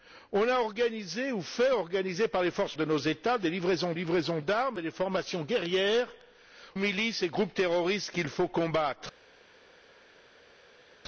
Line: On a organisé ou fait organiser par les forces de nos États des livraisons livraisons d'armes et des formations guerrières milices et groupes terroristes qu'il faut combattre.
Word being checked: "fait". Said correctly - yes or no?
yes